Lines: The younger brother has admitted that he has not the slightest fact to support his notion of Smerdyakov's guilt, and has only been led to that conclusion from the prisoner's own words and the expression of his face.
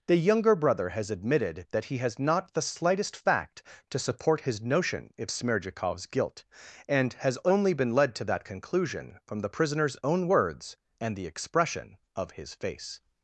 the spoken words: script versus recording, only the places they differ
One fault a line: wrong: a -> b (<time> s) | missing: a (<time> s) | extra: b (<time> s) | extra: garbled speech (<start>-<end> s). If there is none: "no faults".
no faults